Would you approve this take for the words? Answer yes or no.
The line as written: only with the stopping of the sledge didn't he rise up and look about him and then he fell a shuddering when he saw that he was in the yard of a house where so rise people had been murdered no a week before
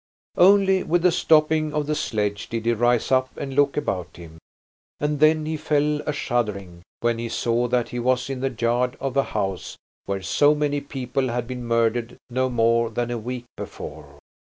no